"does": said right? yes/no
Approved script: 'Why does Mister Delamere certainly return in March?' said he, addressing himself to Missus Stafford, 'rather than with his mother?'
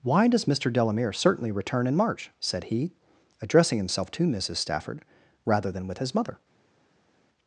yes